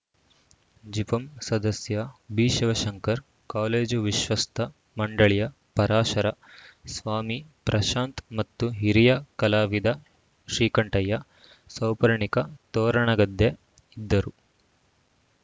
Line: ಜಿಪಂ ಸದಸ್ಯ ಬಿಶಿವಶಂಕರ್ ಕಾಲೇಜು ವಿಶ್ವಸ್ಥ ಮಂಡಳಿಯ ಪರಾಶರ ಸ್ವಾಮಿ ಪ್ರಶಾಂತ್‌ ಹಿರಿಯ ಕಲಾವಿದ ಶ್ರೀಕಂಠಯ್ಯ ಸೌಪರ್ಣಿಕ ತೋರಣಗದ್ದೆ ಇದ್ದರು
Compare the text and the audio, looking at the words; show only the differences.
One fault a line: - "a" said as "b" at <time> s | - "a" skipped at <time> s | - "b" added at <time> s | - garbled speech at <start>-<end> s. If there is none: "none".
- "ಮತ್ತು" added at 8.4 s